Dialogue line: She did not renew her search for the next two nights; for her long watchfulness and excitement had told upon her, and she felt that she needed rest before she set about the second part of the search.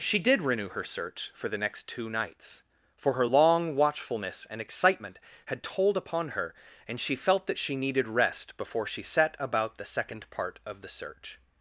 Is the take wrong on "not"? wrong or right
wrong